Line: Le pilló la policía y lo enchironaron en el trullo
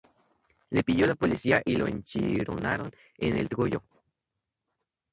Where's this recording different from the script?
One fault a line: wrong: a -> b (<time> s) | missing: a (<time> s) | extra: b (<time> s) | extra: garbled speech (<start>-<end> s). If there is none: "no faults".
no faults